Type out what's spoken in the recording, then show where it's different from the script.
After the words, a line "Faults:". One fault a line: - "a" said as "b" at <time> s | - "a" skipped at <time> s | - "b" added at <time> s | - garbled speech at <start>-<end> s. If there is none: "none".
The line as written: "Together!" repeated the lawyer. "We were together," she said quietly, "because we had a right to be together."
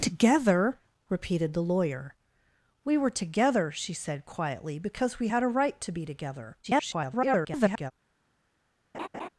"Together!" repeated the lawyer. "We were together," she said quietly, "because we had a right to be together." [garbled]
Faults:
- garbled speech at 6.6-7.9 s